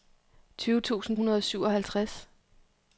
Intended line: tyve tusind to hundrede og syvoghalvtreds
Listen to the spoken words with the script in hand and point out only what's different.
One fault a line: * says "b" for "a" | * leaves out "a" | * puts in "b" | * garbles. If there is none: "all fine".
* leaves out "to"